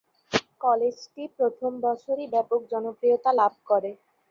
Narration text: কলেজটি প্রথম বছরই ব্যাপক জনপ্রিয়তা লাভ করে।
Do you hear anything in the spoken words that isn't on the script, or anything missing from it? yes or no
no